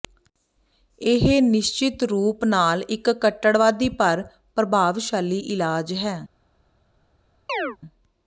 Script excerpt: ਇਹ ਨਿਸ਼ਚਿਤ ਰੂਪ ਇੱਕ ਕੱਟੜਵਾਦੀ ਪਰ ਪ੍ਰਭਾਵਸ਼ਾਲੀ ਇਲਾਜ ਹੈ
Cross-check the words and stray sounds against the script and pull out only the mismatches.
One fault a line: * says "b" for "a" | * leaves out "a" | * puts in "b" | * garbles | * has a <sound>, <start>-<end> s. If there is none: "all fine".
* puts in "ਨਾਲ"
* has a chirp, 7.5-7.8 s